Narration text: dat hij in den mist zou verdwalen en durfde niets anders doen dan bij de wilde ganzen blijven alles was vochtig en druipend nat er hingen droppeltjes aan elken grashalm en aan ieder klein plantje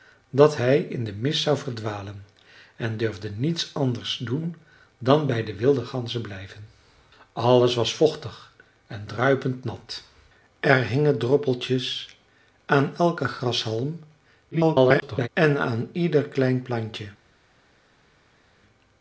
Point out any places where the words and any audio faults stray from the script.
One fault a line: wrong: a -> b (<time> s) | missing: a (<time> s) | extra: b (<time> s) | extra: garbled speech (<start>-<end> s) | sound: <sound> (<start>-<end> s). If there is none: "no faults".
extra: garbled speech (14.5-15.3 s)